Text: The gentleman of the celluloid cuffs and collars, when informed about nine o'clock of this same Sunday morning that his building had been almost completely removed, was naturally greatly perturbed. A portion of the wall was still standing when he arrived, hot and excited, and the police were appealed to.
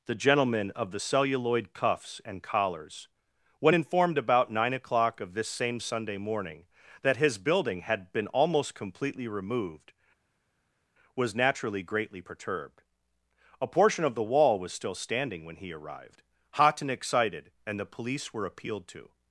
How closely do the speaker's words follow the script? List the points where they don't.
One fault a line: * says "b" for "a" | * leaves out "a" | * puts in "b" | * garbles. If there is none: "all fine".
all fine